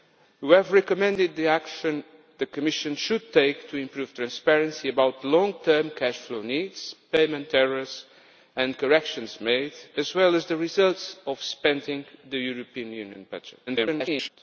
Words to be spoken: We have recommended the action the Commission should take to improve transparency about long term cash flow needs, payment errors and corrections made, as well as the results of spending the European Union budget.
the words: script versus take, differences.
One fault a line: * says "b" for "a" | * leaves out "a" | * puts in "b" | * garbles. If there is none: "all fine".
* garbles